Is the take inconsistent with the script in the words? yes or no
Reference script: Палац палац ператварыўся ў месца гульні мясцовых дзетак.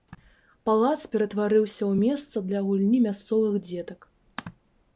yes